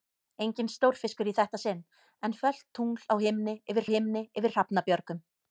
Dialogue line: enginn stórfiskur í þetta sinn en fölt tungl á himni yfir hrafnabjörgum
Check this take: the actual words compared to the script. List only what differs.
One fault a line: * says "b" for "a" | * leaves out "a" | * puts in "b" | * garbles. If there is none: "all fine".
* puts in "himni yfir"